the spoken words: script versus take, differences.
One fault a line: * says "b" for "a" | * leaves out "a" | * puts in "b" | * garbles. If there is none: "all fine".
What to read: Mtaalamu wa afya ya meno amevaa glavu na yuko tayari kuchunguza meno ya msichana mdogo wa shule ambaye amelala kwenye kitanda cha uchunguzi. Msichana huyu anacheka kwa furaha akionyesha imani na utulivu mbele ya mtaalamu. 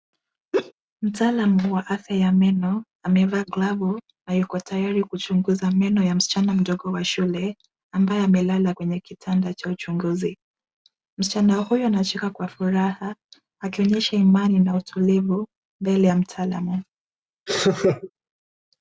all fine